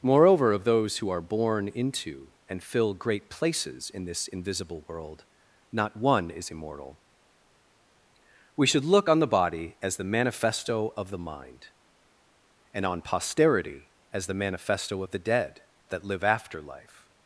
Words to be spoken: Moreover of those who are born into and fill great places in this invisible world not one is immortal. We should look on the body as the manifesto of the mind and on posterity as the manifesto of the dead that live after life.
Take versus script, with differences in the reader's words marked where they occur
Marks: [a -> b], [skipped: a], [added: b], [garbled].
Moreover of those who are born into and fill great places in this invisible world not one is immortal. We should look on the body as the manifesto of the mind and on posterity as the manifesto of the dead that live after life.